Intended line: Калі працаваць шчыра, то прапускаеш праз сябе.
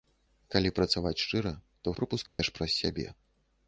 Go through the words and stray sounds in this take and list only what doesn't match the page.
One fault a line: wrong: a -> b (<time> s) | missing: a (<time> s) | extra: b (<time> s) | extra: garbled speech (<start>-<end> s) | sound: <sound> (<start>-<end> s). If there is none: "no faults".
sound: dropout (2.3-2.4 s)